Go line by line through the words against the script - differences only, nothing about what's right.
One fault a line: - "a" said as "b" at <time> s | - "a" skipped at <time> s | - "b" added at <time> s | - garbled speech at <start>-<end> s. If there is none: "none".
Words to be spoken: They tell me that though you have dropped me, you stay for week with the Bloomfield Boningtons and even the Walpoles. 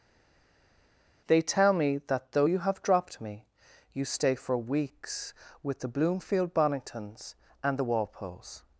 - "week" said as "weeks" at 4.6 s
- "even" skipped at 7.8 s